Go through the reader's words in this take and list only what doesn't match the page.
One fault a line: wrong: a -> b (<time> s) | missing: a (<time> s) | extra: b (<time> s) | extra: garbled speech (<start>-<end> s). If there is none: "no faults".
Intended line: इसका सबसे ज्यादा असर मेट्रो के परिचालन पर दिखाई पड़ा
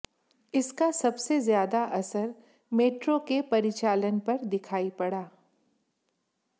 no faults